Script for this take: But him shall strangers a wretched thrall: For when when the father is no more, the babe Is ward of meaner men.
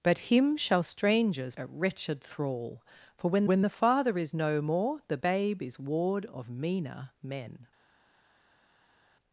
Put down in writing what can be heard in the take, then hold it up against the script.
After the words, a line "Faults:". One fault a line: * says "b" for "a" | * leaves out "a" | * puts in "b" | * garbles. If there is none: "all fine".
But him shall strangers a wretched thrall: For when when the father is no more, the babe Is ward of meaner men.
Faults:
all fine